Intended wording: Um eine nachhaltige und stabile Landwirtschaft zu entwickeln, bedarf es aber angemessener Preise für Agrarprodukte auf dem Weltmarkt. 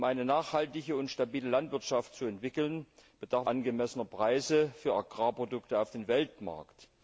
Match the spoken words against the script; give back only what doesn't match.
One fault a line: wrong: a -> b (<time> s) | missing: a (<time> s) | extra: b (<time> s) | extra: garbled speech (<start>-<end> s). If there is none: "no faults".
missing: es aber (3.5 s)